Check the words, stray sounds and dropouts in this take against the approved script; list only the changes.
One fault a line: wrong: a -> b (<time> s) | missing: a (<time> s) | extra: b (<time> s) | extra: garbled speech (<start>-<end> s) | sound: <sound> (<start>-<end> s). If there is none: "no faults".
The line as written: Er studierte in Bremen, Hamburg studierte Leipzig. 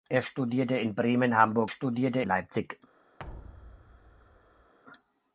sound: thud (3.2-4.7 s)